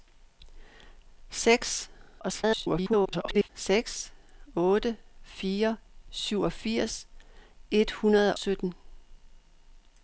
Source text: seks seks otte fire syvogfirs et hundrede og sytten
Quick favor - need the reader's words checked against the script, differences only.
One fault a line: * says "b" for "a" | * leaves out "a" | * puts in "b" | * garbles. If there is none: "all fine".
* garbles
* leaves out "og"